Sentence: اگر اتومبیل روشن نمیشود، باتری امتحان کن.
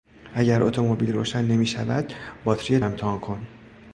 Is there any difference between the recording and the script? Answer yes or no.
no